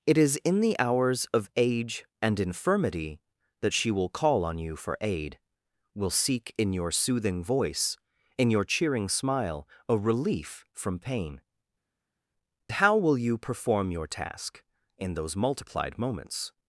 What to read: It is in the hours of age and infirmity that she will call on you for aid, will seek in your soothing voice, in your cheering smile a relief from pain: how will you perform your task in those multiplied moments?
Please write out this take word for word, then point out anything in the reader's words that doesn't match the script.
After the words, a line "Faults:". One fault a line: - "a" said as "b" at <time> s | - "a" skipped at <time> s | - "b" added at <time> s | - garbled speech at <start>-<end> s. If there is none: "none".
It is in the hours of age and infirmity that she will call on you for aid, will seek in your soothing voice, in your cheering smile a relief from pain: how will you perform your task in those multiplied moments?
Faults:
none